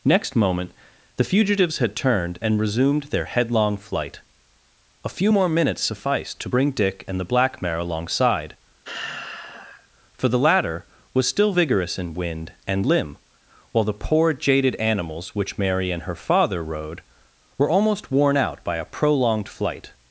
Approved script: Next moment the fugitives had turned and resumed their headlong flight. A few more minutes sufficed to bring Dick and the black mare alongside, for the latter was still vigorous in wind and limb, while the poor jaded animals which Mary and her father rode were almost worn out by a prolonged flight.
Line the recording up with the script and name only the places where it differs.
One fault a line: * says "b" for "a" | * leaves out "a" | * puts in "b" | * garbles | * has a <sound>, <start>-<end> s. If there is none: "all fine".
* has a sigh, 8.8-9.9 s